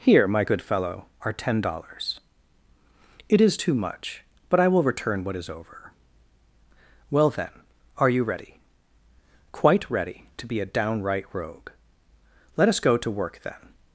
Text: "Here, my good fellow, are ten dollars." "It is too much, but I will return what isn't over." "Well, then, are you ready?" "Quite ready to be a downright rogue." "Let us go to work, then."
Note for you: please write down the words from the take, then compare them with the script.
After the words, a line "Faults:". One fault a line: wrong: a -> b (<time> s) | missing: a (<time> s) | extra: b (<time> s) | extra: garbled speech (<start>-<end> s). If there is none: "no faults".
"Here, my good fellow, are ten dollars." "It is too much, but I will return what is over." "Well, then, are you ready?" "Quite ready to be a downright rogue." "Let us go to work, then."
Faults:
wrong: isn't -> is (5.4 s)